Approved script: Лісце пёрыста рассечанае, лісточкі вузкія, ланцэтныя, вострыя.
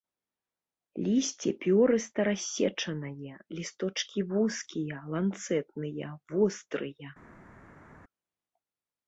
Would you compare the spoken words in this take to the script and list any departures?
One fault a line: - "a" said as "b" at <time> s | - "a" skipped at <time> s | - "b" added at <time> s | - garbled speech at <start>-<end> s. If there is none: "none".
none